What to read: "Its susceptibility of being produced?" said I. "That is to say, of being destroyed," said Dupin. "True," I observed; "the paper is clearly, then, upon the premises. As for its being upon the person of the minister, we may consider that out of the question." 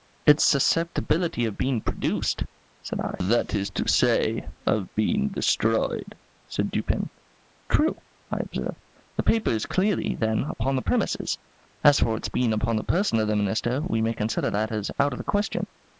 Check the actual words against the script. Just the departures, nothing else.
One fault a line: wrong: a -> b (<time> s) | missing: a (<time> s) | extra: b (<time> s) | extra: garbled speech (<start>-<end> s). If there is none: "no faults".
extra: as (14.7 s)